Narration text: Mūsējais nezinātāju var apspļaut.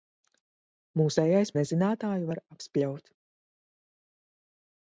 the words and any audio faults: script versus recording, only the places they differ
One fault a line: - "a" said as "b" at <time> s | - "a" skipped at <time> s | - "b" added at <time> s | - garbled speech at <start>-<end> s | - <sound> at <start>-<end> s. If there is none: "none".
none